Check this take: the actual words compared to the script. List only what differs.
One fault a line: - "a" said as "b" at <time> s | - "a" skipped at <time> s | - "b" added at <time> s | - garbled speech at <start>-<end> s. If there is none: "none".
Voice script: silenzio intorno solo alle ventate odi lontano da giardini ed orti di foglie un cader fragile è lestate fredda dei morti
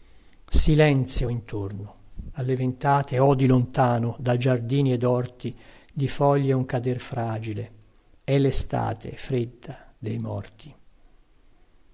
- "solo" skipped at 2.0 s